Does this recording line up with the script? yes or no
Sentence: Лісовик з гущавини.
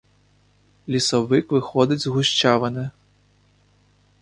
no